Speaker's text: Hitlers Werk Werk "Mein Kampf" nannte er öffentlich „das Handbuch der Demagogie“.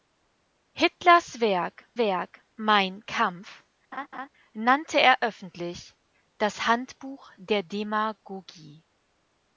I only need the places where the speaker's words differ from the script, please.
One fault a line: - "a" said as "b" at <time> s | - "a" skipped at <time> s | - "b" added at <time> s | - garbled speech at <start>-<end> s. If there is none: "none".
none